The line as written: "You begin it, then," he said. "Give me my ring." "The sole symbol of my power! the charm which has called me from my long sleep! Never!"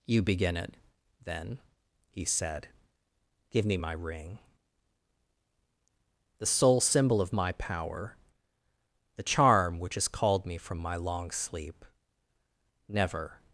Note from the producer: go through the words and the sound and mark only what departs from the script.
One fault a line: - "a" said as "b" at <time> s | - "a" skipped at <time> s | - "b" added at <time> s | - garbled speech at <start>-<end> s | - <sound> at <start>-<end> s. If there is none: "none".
none